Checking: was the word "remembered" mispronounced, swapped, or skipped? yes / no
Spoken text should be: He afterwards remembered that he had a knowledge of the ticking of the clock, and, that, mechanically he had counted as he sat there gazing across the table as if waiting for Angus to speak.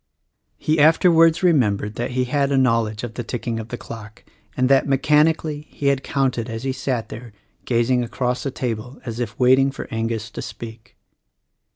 no